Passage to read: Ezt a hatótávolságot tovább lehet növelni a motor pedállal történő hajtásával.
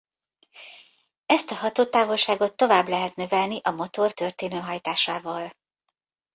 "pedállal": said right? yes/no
no